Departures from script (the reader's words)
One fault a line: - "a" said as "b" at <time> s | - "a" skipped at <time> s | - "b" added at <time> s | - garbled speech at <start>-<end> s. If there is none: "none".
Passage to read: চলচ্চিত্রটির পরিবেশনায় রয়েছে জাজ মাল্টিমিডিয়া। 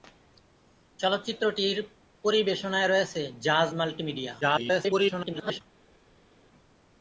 - garbled speech at 4.4-5.6 s